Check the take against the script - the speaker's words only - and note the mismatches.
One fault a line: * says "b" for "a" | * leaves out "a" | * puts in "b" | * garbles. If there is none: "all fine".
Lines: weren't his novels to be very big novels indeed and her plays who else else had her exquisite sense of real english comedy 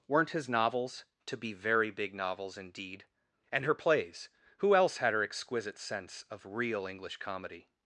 * leaves out "else"